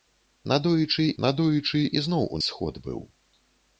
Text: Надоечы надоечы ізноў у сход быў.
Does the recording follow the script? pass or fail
pass